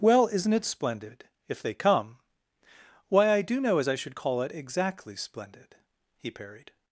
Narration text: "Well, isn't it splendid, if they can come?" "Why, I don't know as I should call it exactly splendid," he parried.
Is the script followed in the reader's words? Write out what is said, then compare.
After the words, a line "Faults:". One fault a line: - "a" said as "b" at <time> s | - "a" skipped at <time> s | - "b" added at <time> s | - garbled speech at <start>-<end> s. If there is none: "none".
"Well, isn't it splendid, if they come?" "Why, I do know as I should call it exactly splendid," he parried.
Faults:
- "can" skipped at 1.7 s
- "don't" said as "do" at 3.4 s